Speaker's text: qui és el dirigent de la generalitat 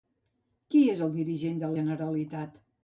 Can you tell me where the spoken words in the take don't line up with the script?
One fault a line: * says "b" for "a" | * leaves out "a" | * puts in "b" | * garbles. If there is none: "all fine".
* leaves out "la"